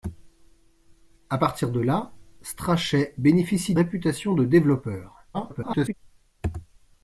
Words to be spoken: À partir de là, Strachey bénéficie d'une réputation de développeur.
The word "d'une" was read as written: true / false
false